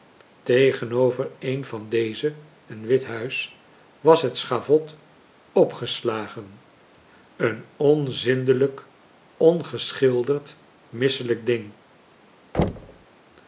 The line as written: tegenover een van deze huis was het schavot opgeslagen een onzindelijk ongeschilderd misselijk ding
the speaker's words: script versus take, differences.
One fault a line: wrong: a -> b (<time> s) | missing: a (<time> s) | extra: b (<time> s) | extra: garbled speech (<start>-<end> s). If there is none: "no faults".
extra: een wit (2.6 s)